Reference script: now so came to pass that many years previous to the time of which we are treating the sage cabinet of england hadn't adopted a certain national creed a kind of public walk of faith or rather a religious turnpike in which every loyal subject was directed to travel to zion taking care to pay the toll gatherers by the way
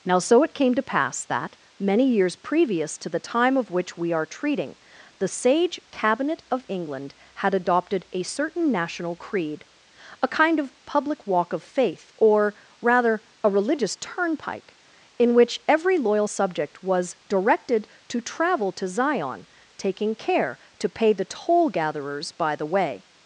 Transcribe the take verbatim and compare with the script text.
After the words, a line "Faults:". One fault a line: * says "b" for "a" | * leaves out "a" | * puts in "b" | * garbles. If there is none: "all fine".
now so it came to pass that many years previous to the time of which we are treating the sage cabinet of england had adopted a certain national creed a kind of public walk of faith or rather a religious turnpike in which every loyal subject was directed to travel to zion taking care to pay the toll gatherers by the way
Faults:
* puts in "it"
* says "had" for "hadn't"